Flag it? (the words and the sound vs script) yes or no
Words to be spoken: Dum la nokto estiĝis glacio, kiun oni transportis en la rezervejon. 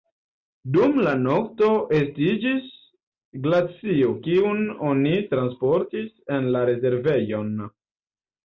no